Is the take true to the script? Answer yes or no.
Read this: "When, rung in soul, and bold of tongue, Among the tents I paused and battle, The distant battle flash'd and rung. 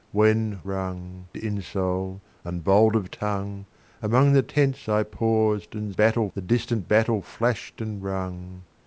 yes